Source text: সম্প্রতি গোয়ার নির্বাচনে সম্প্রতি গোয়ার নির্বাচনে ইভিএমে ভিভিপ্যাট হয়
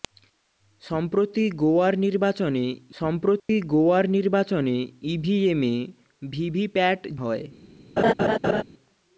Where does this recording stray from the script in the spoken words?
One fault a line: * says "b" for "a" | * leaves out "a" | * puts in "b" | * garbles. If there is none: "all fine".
all fine